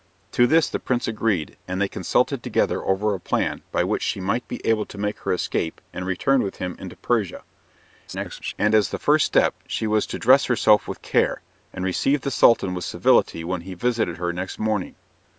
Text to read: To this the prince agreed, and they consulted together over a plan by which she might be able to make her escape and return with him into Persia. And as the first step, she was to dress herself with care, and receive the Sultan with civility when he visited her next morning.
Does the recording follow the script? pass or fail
fail